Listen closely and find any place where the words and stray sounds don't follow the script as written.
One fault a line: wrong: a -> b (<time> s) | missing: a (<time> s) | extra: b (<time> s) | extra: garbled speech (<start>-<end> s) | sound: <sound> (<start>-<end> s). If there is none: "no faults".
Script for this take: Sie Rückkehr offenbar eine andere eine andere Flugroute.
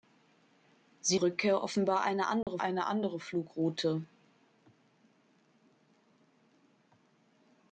sound: dropout (2.4-2.5 s)